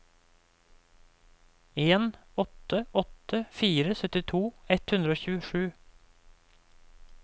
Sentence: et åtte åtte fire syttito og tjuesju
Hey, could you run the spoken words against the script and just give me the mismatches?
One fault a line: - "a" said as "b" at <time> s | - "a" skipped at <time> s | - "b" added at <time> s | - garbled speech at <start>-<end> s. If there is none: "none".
- "et" said as "en" at 1.8 s
- "ett hundre" added at 4.8 s